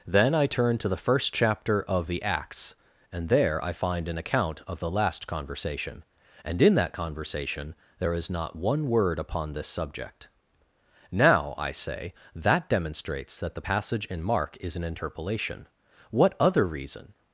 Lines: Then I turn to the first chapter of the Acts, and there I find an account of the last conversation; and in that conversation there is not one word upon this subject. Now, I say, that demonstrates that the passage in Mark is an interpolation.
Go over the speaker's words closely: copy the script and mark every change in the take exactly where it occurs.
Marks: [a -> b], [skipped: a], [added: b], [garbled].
Then I turn to the first chapter of the Acts, and there I find an account of the last conversation; and in that conversation there is not one word upon this subject. Now, I say, that demonstrates that the passage in Mark is an interpolation. [added: What other reason]